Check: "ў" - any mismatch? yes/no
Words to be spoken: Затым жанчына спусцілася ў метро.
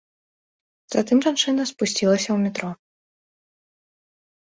no